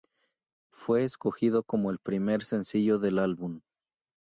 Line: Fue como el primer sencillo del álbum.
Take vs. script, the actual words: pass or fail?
fail